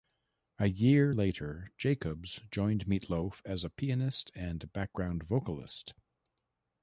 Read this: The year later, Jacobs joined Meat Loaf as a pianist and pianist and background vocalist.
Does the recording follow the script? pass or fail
fail